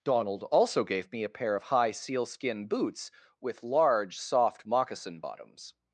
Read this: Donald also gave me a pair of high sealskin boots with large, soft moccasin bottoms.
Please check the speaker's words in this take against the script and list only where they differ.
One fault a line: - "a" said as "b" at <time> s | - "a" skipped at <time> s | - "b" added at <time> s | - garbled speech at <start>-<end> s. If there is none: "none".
none